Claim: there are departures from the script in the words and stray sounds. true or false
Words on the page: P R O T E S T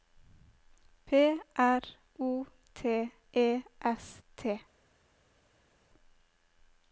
false